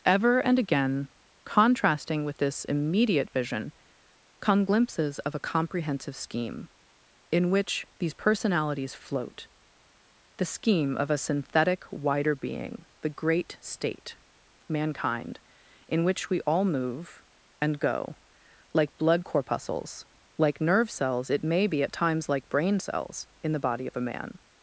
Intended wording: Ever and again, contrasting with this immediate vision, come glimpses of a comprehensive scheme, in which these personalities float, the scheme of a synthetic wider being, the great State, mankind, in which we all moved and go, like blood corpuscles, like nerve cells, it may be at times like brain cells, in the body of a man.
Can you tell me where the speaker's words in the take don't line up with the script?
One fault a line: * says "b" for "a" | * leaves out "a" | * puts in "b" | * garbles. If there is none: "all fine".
* says "move" for "moved"